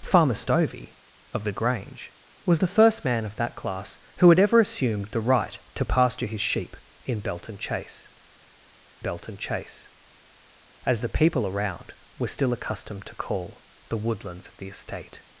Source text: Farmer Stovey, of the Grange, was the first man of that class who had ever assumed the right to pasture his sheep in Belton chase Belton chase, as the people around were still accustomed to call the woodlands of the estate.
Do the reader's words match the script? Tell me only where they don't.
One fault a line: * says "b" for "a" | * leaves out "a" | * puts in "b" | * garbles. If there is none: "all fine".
all fine